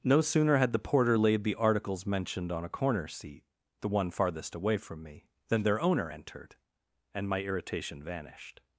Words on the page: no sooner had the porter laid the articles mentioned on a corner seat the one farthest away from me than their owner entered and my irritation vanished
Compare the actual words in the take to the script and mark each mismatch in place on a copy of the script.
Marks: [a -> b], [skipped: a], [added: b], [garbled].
no sooner had the porter laid the articles mentioned on a corner seat the one farthest away from me than their owner entered and my irritation vanished